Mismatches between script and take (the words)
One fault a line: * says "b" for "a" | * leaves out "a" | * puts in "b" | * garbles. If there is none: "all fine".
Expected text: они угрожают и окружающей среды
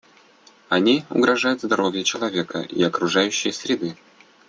* puts in "здоровью человека"